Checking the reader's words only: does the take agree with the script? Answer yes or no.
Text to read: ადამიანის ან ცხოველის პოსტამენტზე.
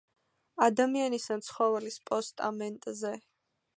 yes